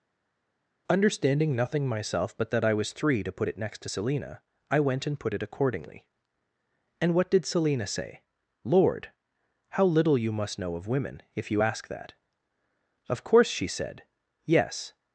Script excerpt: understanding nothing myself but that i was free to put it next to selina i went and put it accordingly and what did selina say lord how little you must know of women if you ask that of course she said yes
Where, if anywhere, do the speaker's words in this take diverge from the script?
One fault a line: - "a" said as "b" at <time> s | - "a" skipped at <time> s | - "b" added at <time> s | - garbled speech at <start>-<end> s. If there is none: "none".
- "free" said as "three" at 2.9 s